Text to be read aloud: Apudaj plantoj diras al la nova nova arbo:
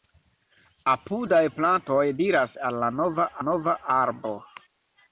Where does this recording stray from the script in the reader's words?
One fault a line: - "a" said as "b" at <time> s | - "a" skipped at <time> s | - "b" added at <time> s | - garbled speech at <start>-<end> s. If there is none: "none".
none